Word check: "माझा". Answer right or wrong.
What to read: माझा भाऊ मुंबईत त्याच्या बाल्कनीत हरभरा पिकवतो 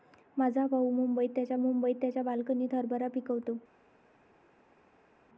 right